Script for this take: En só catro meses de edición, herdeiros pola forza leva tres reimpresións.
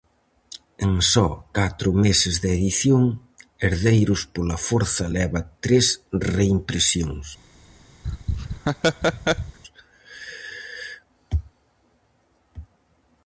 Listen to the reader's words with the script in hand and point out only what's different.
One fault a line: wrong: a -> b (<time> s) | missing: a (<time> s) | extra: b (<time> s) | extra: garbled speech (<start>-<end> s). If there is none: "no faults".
no faults